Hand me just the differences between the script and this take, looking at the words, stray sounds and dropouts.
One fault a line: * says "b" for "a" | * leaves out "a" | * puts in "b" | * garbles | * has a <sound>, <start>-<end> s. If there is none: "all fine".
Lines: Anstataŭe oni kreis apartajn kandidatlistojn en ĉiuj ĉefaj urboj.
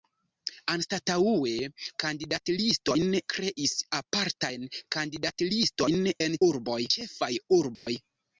* says "kandidatlistojn" for "oni"
* says "urboj" for "ĉiuj"
* has a dropout, 7.8-7.9 s